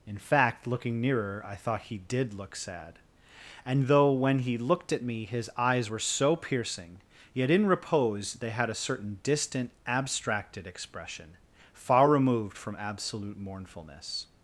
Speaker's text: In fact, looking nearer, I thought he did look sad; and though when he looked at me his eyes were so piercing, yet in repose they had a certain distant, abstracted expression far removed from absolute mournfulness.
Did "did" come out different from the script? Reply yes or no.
no